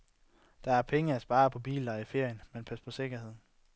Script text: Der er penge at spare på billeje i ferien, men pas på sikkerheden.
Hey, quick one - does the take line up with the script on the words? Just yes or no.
yes